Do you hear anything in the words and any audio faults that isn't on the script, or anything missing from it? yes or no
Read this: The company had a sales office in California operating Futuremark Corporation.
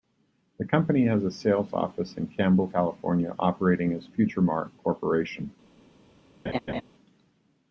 yes